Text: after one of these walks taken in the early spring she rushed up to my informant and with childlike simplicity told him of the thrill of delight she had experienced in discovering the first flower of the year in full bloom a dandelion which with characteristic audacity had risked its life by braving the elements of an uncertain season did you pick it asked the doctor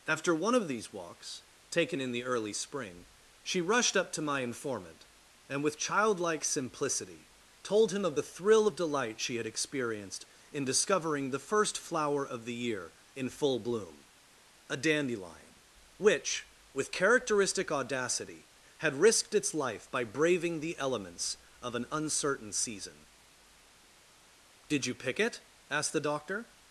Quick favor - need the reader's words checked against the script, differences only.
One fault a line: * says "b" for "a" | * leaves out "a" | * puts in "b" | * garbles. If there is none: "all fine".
all fine